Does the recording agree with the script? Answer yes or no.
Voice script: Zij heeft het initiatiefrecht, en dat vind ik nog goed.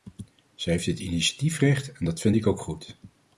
no